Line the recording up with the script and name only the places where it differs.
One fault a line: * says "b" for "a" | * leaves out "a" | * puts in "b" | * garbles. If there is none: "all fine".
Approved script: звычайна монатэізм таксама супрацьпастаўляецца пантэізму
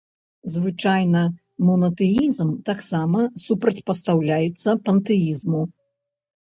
all fine